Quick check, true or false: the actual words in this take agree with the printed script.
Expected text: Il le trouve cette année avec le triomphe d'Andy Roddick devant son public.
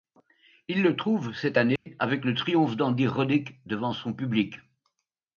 true